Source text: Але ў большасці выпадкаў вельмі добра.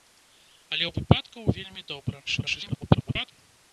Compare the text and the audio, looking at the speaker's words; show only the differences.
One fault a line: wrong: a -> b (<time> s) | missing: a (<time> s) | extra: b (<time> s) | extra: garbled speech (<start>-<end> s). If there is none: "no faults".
missing: большасці (0.9 s)
extra: garbled speech (2.3-3.3 s)